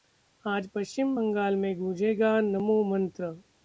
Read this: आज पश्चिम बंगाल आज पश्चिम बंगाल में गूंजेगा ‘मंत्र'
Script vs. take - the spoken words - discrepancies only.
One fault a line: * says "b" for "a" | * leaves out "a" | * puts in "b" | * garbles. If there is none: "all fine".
* leaves out "आज पश्चिम बंगाल"
* puts in "नमो"